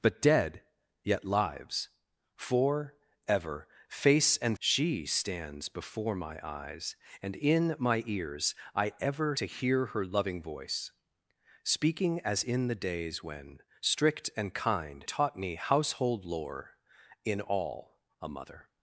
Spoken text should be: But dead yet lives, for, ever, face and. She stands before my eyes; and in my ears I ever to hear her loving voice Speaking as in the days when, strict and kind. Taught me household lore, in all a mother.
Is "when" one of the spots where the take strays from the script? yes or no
no